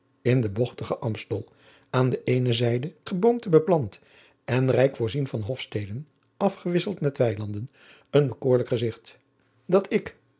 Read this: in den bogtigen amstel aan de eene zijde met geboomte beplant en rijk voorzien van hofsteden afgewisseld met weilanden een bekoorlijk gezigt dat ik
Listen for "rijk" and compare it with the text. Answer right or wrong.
right